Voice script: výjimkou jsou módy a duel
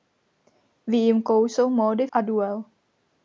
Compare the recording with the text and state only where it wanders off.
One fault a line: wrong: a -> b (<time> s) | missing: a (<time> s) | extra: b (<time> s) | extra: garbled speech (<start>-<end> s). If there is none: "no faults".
no faults